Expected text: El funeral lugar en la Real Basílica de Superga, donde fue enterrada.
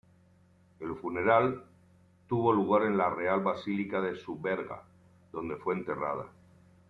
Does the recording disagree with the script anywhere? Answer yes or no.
yes